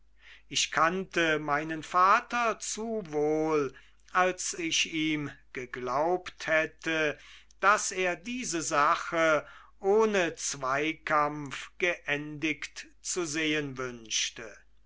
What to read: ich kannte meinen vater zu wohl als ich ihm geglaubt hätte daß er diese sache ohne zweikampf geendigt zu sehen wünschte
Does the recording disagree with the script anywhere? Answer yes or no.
no